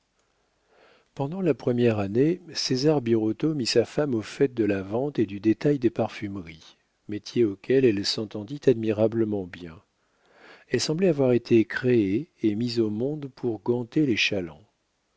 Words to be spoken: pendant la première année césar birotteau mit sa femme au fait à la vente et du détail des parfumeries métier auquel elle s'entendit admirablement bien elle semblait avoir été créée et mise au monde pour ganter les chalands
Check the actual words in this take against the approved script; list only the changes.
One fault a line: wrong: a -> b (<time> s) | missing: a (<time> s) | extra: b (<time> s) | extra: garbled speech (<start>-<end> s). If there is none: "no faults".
wrong: à -> de (4.5 s)